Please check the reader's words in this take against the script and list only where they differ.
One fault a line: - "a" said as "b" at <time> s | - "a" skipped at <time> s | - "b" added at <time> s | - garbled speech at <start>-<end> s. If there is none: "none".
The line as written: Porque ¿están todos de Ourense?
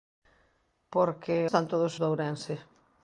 none